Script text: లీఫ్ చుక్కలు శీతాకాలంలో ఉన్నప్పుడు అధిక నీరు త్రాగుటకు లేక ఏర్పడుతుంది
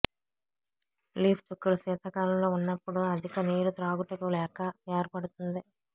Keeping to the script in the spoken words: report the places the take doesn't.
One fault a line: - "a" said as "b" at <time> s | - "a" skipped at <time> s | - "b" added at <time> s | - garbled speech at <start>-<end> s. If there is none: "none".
none